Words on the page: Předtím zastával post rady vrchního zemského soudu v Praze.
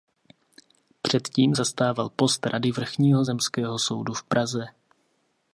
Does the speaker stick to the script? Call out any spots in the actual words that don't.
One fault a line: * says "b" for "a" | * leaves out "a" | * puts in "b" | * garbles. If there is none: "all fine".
all fine